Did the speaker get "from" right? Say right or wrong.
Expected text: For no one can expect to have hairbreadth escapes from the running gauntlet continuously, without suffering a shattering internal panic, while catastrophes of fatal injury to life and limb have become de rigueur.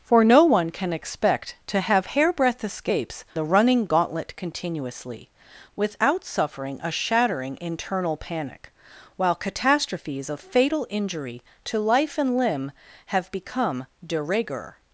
wrong